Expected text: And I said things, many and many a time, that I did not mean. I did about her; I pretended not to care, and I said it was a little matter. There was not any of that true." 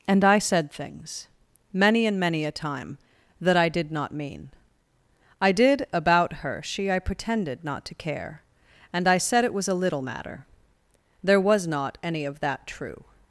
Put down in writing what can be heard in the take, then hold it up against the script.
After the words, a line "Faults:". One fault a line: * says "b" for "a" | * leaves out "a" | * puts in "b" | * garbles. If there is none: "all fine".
And I said things, many and many a time, that I did not mean. I did about her; she I pretended not to care, and I said it was a little matter. There was not any of that true."
Faults:
* puts in "she"